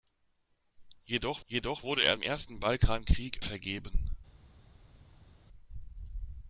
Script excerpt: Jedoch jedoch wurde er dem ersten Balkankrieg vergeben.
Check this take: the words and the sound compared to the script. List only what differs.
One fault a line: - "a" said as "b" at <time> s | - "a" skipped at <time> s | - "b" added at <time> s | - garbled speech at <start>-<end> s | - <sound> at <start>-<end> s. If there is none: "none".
none